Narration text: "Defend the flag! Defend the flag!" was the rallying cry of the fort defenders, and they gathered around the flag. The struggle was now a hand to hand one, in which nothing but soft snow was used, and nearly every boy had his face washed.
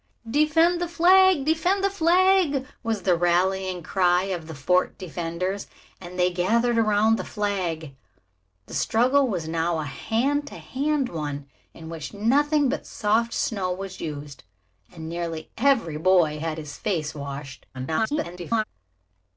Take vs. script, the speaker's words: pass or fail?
fail